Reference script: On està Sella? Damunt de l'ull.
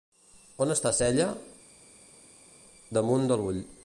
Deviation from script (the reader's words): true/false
false